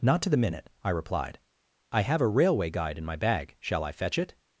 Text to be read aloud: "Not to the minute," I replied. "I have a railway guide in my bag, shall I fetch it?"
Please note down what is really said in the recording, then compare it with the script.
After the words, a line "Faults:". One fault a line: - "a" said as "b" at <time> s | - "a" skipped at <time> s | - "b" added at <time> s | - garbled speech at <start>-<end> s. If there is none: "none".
"Not to the minute," I replied. "I have a railway guide in my bag, shall I fetch it?"
Faults:
none